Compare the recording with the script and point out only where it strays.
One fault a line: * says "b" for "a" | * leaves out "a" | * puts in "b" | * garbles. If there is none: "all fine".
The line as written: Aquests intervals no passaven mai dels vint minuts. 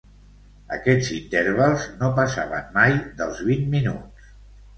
all fine